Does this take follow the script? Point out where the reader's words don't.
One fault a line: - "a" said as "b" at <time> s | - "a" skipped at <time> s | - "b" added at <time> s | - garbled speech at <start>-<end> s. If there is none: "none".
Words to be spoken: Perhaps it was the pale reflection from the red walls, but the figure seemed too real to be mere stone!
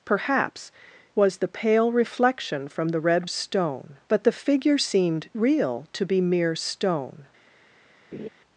- "it" skipped at 0.7 s
- "walls" said as "stone" at 3.3 s
- "too" skipped at 5.3 s